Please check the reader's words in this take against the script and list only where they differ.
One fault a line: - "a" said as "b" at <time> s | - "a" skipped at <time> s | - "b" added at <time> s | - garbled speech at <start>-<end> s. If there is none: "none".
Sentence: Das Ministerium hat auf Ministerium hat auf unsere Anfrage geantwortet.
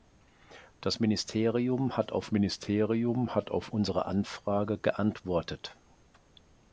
none